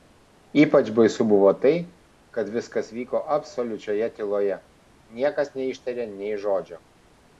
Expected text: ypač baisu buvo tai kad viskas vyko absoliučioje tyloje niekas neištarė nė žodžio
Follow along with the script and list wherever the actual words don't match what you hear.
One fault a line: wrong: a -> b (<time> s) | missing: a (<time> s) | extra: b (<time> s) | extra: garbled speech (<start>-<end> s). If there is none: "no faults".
no faults